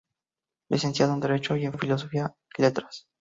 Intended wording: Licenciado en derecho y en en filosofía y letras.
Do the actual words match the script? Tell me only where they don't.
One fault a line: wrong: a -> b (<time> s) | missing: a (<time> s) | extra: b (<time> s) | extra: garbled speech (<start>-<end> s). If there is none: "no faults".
no faults